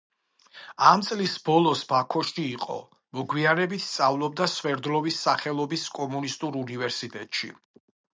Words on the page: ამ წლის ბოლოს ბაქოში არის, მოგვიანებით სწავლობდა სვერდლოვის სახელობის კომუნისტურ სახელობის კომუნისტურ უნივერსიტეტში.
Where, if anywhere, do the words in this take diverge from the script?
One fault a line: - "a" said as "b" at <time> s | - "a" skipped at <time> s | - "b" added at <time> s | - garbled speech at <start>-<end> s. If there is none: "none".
- "არის" said as "იყო" at 2.5 s
- "სახელობის კომუნისტურ" skipped at 6.6 s